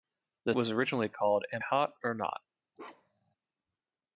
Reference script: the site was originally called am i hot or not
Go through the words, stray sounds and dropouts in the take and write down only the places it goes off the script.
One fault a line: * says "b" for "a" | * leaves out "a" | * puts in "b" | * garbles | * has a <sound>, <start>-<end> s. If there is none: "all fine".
* leaves out "site"
* leaves out "i"
* has a bark, 2.8-3.4 s